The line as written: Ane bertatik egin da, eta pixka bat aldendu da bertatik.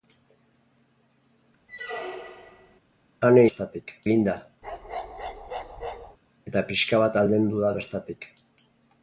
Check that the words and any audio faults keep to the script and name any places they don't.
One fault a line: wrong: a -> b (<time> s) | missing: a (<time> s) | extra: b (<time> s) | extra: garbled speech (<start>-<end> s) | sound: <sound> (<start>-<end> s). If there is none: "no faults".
sound: squeak (1.7-2.8 s)
sound: bark (4.6-6.2 s)